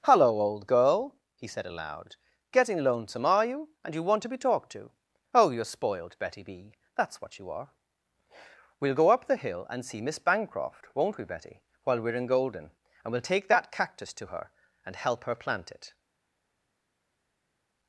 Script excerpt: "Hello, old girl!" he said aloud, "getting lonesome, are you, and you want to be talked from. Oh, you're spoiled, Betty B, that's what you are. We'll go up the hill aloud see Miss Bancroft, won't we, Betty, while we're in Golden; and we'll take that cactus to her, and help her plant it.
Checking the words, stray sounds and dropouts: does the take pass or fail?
fail